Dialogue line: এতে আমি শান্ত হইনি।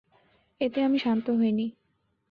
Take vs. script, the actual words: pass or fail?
pass